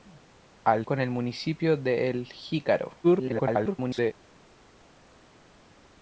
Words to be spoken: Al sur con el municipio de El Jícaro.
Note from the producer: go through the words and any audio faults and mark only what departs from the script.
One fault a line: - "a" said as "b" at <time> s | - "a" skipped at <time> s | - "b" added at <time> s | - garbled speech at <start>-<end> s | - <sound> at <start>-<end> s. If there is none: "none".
- "sur" skipped at 0.9 s
- garbled speech at 3.0-4.1 s